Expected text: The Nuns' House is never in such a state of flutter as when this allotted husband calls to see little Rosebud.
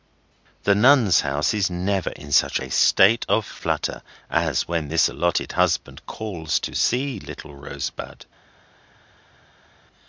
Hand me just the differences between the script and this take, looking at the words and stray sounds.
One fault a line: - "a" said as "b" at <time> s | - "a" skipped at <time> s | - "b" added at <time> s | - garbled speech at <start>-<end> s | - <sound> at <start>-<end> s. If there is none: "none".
none